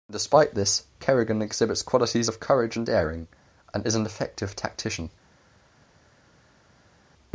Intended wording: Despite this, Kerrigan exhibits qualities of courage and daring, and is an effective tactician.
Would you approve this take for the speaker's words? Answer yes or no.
yes